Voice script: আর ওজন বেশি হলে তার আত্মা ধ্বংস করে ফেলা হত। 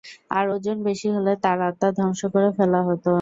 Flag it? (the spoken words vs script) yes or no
no